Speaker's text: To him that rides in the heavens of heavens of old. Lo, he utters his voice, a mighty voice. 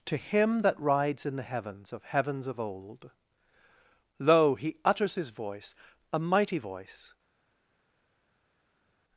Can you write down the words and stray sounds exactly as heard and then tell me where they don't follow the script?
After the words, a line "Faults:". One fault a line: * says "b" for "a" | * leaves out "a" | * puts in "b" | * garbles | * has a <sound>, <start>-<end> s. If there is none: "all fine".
To him that rides in the heavens of heavens of old. Lo, he utters his voice, a mighty voice.
Faults:
all fine